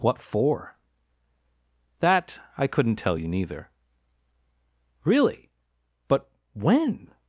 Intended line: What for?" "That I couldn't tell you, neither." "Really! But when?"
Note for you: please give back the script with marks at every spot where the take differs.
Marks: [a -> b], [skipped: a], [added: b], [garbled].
What for?" "That I couldn't tell you, neither." "Really! But when?"